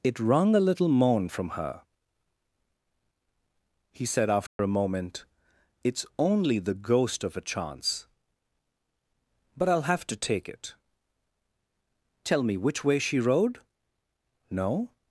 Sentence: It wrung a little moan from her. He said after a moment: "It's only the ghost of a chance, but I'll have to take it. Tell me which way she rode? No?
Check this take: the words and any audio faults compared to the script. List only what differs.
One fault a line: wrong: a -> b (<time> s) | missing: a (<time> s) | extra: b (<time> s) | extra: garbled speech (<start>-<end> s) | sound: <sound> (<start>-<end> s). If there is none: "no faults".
sound: dropout (4.5-4.6 s)